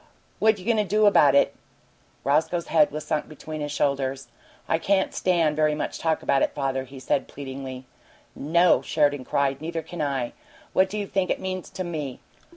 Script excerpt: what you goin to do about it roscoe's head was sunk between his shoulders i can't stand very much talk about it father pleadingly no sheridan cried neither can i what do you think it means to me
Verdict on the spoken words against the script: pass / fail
fail